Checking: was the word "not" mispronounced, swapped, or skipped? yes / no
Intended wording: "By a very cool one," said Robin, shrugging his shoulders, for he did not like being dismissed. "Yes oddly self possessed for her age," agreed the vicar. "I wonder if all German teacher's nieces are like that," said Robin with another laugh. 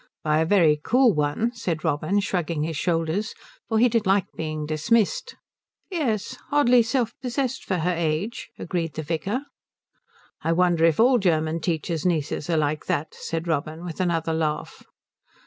yes